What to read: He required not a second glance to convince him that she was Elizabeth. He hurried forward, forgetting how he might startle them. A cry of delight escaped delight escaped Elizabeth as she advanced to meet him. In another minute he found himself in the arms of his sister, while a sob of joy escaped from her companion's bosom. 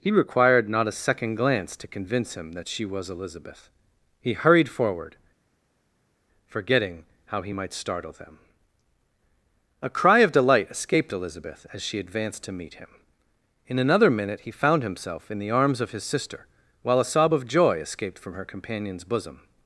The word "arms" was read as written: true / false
true